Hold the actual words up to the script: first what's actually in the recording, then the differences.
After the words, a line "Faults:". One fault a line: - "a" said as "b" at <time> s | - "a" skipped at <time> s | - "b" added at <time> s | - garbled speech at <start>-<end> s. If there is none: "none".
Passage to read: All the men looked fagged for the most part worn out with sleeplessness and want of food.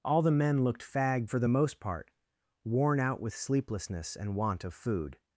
All the men looked fagged for the most part worn out with sleeplessness and want of food.
Faults:
none